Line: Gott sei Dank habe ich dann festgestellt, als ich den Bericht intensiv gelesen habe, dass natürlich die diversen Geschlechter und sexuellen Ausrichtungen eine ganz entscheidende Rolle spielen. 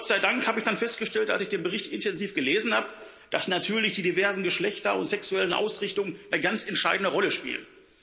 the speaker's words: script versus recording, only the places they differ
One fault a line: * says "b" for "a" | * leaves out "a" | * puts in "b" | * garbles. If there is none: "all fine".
all fine